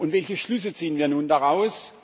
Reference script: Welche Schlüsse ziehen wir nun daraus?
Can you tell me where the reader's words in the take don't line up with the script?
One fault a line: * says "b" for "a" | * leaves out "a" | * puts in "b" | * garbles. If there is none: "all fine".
all fine